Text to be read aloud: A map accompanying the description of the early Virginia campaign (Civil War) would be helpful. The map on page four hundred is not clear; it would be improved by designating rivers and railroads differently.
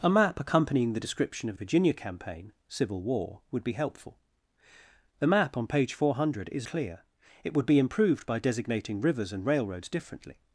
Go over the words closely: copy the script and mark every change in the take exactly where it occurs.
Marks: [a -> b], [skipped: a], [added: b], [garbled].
A map accompanying the description of [skipped: the early] Virginia campaign (Civil War) would be helpful. The map on page four hundred is [skipped: not] clear; it would be improved by designating rivers and railroads differently.